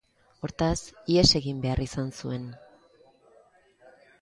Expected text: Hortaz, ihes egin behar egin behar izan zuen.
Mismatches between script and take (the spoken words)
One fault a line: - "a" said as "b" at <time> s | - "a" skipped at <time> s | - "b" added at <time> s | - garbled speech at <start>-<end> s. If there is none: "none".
- "egin behar" skipped at 1.8 s